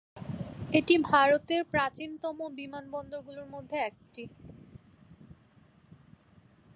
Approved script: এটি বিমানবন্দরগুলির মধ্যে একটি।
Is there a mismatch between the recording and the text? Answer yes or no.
yes